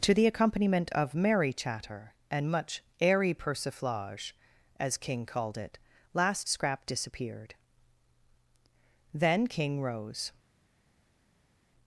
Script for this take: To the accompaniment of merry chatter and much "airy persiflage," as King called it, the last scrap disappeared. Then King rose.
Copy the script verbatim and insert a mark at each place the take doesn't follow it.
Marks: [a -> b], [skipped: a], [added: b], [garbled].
To the accompaniment of merry chatter and much "airy persiflage," as King called it, [skipped: the] last scrap disappeared. Then King rose.